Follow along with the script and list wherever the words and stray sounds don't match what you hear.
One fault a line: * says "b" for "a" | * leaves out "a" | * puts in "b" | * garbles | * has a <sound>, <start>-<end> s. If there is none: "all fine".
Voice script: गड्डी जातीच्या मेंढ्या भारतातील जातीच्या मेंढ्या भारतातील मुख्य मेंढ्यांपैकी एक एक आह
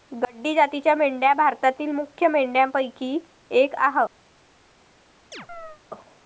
* leaves out "जातीच्या मेंढ्या भारतातील"
* leaves out "एक"
* has a chirp, 5.3-5.8 s